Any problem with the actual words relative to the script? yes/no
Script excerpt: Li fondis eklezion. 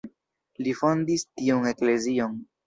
yes